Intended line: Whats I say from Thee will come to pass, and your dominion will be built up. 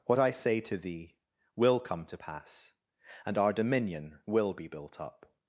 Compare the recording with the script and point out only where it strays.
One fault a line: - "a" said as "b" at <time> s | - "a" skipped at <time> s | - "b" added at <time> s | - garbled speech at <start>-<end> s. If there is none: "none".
- "Whats" said as "What" at 0.1 s
- "from" said as "to" at 0.6 s
- "your" said as "our" at 3.3 s